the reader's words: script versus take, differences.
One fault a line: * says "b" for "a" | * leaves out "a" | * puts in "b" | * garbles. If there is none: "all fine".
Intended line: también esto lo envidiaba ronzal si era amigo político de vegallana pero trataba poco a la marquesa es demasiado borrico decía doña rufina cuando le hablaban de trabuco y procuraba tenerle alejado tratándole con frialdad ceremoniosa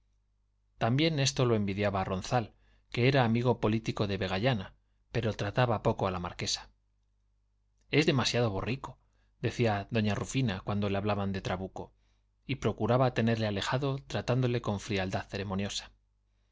* says "que" for "si"